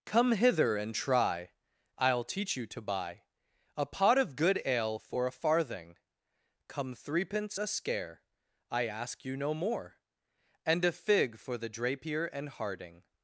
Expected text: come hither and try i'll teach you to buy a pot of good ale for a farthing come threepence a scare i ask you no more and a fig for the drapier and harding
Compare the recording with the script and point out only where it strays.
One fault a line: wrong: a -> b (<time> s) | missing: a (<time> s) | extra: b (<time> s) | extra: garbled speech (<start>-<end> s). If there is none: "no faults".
no faults